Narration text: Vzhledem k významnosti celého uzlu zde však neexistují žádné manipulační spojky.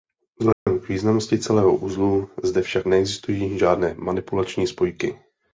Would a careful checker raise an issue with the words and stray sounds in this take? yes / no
yes